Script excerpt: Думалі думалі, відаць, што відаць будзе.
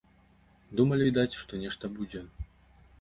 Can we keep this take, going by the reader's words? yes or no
no